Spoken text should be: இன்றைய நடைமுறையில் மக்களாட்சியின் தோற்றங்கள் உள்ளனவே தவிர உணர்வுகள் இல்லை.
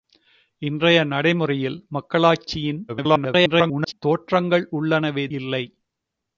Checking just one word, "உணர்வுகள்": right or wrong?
wrong